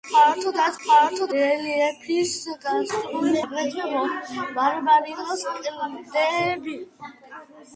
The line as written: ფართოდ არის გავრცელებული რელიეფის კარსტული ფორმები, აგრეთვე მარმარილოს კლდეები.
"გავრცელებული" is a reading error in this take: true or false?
true